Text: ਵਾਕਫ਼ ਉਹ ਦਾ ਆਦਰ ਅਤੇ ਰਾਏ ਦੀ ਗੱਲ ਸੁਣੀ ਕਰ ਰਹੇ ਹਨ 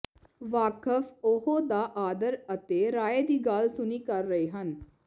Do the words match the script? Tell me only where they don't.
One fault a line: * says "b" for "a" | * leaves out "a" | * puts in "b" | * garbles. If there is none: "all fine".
all fine